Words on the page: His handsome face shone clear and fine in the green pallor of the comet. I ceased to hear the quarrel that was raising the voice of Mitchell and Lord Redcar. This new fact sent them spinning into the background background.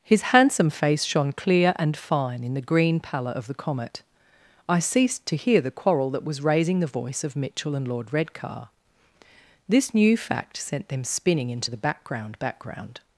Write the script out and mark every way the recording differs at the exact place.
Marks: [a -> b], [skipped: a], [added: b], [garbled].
His handsome face shone clear and fine in the green pallor of the comet. I ceased to hear the quarrel that was raising the voice of Mitchell and Lord Redcar. This new fact sent them spinning into the background background.